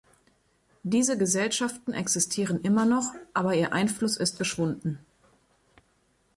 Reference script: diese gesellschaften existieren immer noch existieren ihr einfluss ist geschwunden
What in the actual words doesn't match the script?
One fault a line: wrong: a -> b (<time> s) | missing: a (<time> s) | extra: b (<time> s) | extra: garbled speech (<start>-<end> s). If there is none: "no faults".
wrong: existieren -> aber (3.4 s)